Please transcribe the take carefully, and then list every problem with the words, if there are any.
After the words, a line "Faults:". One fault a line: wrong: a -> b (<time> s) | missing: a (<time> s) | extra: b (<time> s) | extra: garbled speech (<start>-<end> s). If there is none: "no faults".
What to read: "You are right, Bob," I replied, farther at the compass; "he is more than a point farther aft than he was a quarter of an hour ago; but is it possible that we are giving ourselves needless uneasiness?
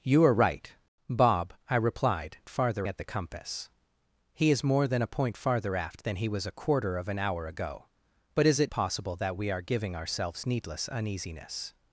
"You are right, Bob," I replied, farther at the compass; "he is more than a point farther aft than he was a quarter of an hour ago; but is it possible that we are giving ourselves needless uneasiness?
Faults:
no faults